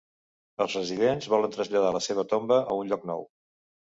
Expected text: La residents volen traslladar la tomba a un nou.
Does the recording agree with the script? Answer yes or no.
no